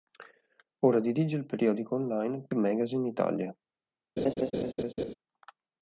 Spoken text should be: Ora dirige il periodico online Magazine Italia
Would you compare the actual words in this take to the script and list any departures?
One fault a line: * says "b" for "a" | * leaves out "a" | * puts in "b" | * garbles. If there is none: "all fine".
all fine